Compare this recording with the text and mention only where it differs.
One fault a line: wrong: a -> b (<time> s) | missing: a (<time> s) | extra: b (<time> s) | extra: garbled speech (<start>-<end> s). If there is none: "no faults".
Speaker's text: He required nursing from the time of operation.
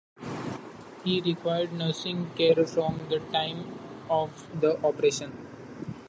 extra: care (2.4 s)
extra: the (4.6 s)